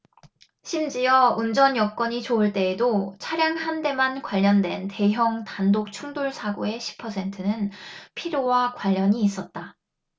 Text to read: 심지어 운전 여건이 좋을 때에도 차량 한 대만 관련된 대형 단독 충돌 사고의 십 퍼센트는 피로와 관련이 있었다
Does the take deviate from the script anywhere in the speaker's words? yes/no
no